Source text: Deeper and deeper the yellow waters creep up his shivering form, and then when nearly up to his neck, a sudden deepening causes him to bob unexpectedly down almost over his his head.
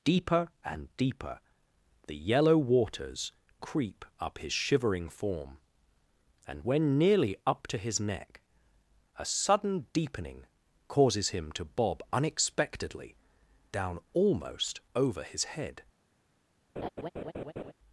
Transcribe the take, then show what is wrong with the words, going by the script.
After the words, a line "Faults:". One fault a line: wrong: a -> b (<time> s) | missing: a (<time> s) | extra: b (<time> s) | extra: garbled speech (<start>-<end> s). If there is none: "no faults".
Deeper and deeper the yellow waters creep up his shivering form, and when nearly up to his neck, a sudden deepening causes him to bob unexpectedly down almost over his head.
Faults:
missing: then (6.7 s)
missing: his (15.4 s)